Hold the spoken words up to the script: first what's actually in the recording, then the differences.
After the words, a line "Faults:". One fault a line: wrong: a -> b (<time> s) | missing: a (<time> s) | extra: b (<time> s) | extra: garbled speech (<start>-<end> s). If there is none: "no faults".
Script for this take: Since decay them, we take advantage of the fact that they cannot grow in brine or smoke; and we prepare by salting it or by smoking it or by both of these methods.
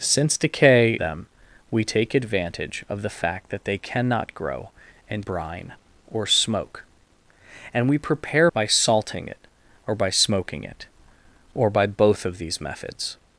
Since decay them, we take advantage of the fact that they cannot grow in brine or smoke; and we prepare by salting it or by smoking it or by both of these methods.
Faults:
no faults